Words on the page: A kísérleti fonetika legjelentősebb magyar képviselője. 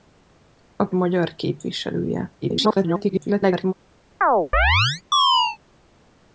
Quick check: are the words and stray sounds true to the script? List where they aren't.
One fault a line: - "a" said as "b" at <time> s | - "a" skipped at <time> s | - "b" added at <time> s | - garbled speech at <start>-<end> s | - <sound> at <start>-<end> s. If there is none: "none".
- "kísérleti fonetika legjelentősebb" skipped at 0.9 s
- garbled speech at 2.4-3.7 s
- chirp at 4.2-5.6 s